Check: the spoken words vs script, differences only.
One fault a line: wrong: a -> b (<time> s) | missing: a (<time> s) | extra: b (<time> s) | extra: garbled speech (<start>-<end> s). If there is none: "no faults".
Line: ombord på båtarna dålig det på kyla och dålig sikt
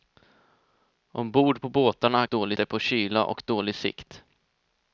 no faults